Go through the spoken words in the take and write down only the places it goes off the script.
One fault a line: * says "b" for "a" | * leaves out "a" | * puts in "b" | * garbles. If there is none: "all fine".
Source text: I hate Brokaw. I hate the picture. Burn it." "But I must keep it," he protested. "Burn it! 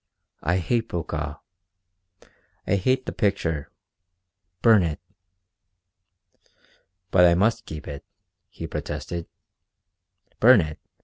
all fine